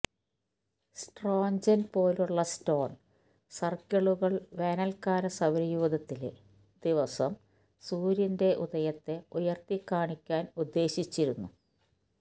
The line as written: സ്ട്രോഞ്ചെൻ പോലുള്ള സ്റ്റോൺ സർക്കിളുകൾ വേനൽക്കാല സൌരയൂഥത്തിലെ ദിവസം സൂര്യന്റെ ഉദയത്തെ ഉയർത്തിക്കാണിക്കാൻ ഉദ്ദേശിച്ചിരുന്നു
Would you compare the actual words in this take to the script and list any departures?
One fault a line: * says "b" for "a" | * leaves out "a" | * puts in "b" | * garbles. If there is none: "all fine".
all fine